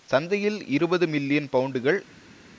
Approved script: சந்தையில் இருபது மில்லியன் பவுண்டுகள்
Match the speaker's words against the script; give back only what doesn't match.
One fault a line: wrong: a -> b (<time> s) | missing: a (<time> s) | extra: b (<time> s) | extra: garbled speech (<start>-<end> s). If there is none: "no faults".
no faults